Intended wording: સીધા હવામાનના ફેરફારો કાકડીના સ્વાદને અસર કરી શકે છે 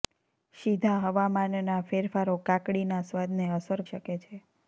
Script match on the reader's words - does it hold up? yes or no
no